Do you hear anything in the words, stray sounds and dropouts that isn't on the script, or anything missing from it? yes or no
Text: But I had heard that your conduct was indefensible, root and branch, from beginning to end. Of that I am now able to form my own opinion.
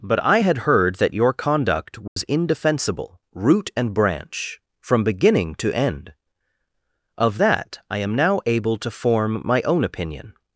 yes